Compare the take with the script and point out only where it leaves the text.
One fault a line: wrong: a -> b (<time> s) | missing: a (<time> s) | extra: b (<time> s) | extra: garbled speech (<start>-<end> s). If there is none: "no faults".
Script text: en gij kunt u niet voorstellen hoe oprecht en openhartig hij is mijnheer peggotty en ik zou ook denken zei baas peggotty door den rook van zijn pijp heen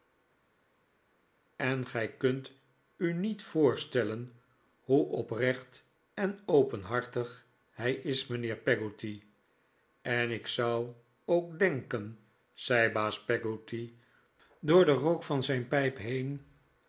no faults